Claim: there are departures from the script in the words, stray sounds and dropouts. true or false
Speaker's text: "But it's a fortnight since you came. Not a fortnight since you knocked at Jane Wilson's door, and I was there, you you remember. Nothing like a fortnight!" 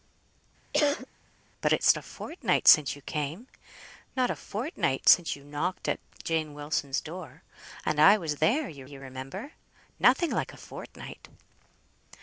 true